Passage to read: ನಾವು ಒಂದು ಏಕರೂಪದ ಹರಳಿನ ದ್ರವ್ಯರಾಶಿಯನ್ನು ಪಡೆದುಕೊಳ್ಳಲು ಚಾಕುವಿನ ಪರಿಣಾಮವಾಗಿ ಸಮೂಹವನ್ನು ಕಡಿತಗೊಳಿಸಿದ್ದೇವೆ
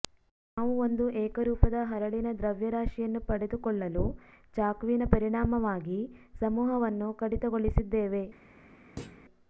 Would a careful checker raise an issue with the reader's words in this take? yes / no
no